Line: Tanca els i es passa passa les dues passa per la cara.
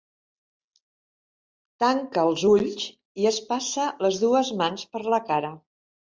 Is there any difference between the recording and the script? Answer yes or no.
yes